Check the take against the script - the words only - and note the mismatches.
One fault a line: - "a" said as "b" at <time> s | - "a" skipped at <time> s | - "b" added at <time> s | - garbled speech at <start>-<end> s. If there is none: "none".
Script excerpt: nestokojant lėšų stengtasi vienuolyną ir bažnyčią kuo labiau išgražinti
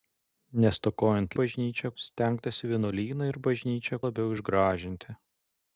- "lėšų" said as "bažnyčią" at 1.4 s
- "kuo" skipped at 4.0 s